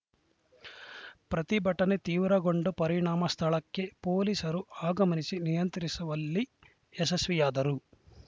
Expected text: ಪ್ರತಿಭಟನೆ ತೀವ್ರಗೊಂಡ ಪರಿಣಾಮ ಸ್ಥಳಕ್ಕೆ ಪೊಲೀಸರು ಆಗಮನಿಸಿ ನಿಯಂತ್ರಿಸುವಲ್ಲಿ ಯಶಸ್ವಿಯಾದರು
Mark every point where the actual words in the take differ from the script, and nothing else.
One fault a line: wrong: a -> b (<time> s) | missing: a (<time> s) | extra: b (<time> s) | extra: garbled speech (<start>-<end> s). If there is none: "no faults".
no faults